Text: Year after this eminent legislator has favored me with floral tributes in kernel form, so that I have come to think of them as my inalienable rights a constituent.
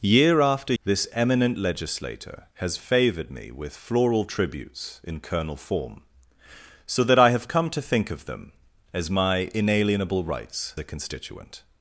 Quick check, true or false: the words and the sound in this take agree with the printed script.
true